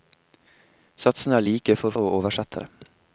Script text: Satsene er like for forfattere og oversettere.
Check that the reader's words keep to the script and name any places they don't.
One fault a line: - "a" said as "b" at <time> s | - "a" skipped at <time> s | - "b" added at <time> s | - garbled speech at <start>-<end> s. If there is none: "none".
- "forfattere" skipped at 2.0 s